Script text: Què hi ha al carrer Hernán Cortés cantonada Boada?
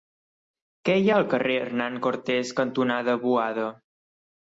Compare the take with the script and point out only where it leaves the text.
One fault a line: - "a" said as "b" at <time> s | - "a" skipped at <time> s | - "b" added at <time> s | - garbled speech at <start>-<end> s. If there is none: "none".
none